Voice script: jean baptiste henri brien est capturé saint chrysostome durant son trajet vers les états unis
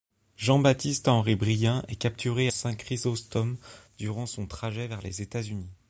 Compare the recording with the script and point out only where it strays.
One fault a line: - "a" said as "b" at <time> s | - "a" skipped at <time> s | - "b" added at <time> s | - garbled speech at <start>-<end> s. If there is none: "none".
none